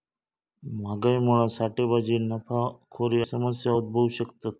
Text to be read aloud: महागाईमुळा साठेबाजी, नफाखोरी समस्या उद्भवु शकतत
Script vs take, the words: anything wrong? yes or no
no